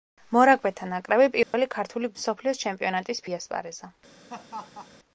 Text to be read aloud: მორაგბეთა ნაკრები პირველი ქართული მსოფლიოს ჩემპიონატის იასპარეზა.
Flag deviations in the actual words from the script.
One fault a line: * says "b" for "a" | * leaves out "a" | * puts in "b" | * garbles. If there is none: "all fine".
all fine